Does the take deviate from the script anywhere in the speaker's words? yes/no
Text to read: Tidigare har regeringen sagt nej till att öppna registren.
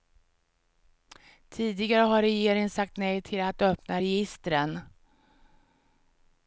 no